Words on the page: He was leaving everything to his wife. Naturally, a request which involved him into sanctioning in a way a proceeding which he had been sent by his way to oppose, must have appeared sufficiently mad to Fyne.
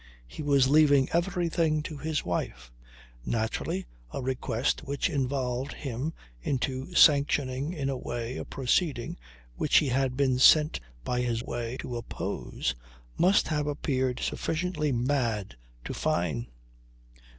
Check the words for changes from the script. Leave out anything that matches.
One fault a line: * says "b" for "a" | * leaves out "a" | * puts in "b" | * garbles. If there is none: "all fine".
all fine